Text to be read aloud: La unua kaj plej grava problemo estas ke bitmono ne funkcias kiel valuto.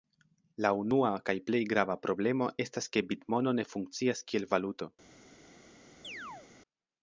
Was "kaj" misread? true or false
false